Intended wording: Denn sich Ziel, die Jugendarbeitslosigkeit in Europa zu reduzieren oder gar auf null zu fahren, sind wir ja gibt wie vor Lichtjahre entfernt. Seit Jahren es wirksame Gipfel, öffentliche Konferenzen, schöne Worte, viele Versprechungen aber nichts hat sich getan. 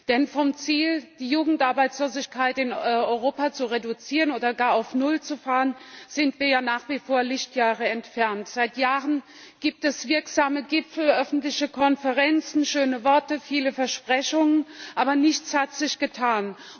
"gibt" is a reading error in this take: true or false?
true